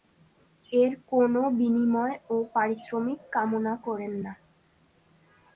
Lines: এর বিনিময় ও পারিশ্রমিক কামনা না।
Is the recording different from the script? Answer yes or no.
yes